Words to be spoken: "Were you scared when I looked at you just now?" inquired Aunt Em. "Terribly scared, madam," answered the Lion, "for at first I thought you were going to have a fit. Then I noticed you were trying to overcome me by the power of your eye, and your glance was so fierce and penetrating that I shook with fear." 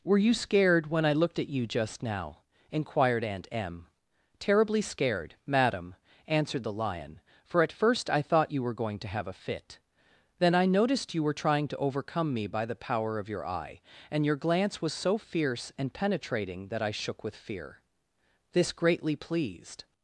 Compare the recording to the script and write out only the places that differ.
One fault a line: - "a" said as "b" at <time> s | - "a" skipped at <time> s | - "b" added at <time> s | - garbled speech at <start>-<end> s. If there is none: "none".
- "This greatly pleased" added at 18.5 s